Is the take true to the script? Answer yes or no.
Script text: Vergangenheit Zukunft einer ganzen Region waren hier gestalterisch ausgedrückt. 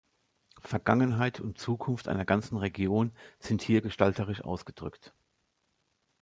no